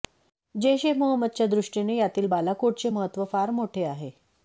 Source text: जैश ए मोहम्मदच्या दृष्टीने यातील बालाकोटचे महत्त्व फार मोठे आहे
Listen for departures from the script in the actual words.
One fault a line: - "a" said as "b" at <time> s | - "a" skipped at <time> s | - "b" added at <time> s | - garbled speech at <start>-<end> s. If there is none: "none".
none